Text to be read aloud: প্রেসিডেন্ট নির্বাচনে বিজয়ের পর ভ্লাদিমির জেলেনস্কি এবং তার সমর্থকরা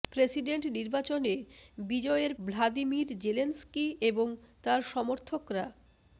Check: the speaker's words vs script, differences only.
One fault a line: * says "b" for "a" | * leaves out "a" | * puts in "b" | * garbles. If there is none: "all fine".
* leaves out "পর"